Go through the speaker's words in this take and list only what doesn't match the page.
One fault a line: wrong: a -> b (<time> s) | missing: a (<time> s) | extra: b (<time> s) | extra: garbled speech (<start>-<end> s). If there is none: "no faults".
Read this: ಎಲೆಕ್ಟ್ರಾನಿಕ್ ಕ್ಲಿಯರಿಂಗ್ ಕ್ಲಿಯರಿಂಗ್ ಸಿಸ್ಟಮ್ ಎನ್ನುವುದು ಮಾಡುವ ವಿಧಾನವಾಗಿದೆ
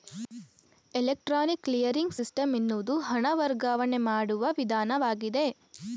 missing: ಕ್ಲಿಯರಿಂಗ್ (2.2 s)
extra: ಹಣ ವರ್ಗಾವಣೆ (3.1 s)